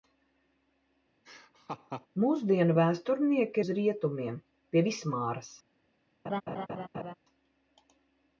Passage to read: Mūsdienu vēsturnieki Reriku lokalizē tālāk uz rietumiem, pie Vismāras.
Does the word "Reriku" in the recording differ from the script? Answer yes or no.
yes